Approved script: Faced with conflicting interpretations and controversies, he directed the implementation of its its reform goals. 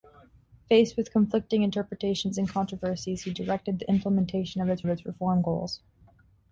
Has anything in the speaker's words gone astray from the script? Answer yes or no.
no